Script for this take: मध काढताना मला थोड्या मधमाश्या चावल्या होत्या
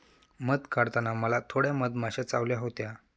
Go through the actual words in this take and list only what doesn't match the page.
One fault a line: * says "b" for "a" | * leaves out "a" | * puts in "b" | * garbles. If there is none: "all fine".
all fine